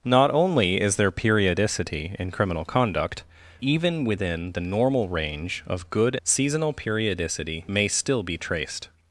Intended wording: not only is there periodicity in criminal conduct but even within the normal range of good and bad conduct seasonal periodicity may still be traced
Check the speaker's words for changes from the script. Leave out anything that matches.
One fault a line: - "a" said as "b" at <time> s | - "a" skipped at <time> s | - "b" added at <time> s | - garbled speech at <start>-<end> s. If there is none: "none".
- "but" skipped at 3.2 s
- "and bad conduct" skipped at 6.2 s